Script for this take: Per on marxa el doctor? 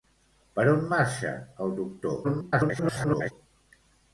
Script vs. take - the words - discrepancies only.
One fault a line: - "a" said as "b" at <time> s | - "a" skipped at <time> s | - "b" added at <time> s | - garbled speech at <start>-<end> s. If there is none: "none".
- garbled speech at 2.2-3.3 s